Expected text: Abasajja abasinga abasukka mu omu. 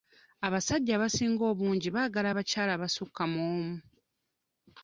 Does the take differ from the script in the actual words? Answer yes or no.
yes